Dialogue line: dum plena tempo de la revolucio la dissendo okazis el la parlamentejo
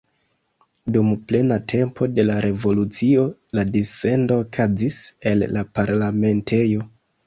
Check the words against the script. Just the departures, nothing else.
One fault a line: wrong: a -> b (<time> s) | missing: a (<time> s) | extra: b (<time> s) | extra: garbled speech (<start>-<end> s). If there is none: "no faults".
no faults